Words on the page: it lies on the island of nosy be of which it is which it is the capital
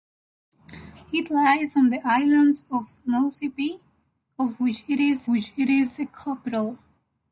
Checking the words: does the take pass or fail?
pass